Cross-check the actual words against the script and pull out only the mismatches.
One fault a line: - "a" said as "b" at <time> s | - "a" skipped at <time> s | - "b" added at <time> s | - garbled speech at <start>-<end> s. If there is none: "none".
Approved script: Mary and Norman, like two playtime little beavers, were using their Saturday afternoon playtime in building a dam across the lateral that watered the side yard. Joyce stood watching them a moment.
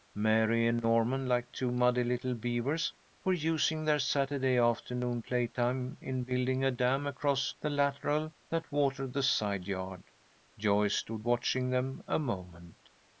- "playtime" said as "muddy" at 1.7 s